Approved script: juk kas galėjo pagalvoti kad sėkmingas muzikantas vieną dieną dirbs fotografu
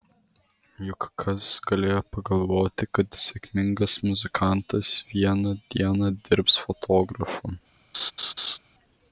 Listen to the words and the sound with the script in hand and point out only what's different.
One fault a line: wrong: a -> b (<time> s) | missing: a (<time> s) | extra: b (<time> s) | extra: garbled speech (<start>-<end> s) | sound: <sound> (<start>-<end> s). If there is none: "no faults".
sound: laugh (7.9-8.6 s)